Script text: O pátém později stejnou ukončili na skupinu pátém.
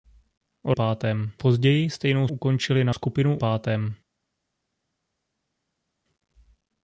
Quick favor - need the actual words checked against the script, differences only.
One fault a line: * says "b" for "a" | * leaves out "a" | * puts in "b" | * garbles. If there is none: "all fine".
all fine